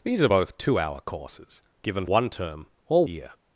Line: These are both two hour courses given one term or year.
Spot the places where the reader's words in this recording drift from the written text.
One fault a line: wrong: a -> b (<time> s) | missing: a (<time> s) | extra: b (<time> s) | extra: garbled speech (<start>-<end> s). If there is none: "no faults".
no faults